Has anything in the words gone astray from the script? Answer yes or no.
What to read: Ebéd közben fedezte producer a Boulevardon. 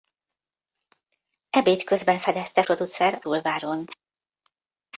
no